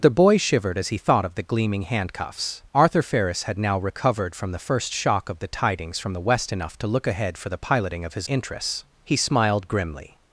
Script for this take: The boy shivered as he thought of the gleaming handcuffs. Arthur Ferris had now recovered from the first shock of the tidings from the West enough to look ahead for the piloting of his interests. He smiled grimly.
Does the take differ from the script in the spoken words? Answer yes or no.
no